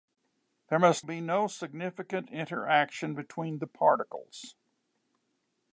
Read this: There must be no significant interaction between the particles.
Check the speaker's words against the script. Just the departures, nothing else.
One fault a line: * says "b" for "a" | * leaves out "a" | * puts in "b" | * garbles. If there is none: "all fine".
all fine